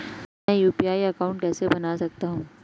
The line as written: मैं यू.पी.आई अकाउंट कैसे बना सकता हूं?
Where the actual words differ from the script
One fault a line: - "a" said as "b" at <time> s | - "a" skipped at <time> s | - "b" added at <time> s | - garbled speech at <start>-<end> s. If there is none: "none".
none